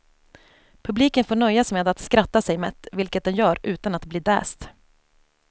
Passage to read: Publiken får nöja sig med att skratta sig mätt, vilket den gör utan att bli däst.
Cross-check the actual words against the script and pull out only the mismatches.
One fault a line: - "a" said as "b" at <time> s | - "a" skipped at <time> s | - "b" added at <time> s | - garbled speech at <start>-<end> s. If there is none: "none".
none